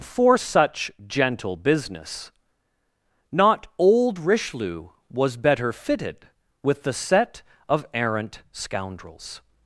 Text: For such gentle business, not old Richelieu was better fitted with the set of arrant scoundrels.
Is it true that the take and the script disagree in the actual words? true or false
false